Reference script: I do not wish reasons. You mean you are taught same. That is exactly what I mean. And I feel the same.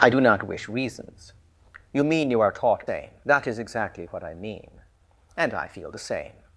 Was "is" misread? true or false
false